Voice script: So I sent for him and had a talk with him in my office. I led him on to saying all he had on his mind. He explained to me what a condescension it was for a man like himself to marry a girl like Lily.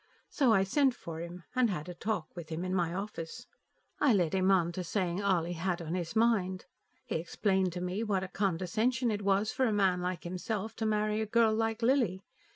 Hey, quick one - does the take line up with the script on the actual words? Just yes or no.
yes